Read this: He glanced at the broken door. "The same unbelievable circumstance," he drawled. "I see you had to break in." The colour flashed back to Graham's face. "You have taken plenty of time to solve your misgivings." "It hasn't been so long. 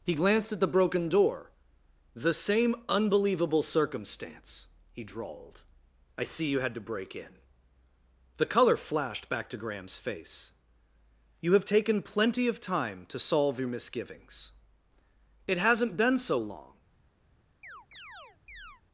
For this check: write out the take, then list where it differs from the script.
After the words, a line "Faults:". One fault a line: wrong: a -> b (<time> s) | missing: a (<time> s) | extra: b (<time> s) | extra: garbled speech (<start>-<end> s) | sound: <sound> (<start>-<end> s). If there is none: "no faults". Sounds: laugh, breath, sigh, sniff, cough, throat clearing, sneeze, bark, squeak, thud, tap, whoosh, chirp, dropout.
He glanced at the broken door. "The same unbelievable circumstance," he drawled. "I see you had to break in." The colour flashed back to Graham's face. "You have taken plenty of time to solve your misgivings." "It hasn't been so long.
Faults:
sound: chirp (17.6-18.8 s)